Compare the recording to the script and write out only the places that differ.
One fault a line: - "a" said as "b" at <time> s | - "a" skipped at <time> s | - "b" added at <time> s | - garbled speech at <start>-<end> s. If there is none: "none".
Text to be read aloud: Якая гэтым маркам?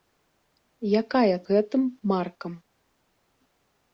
none